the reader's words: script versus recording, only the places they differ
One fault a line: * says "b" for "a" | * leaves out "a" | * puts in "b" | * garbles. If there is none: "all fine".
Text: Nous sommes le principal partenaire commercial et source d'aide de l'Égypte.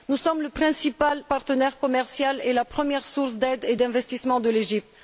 * puts in "la première"
* puts in "et d'investissement"